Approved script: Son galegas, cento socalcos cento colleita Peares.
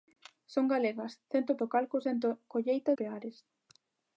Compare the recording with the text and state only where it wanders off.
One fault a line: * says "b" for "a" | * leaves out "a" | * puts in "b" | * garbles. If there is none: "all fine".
all fine